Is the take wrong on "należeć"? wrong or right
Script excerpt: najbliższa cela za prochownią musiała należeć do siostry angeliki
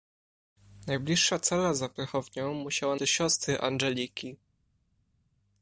wrong